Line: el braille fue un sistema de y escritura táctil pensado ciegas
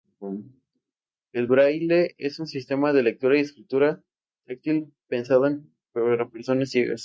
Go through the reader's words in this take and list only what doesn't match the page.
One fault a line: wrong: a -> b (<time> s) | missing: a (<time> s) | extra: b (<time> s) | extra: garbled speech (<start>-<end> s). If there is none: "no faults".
wrong: fue -> es (2.2 s)
extra: lectura (3.0 s)
extra: para personas (5.9 s)